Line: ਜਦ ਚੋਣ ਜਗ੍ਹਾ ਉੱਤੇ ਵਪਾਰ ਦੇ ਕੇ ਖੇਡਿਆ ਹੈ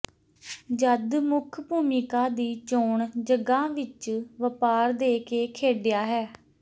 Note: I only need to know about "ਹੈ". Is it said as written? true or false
true